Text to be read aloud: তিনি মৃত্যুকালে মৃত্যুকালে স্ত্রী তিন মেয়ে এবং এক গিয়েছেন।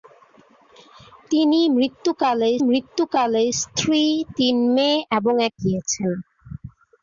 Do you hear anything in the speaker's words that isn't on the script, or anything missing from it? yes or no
no